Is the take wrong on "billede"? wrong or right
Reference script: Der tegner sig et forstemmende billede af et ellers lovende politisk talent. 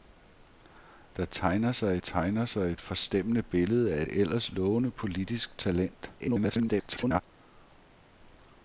right